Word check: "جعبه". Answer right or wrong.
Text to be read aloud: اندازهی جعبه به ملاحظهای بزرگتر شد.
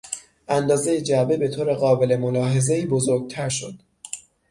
right